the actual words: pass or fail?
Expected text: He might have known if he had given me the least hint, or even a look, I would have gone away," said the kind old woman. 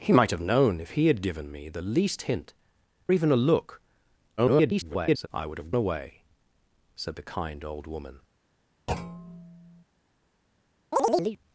fail